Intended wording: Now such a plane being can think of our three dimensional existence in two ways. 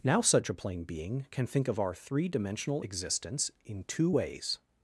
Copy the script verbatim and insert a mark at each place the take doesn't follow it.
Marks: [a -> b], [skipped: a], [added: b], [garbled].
Now such a plane being can think of our three dimensional existence in two ways.